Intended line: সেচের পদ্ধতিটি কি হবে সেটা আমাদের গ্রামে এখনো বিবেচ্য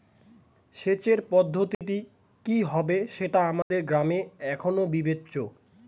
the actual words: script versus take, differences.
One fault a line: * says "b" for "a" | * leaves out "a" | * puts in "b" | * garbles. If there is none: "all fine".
all fine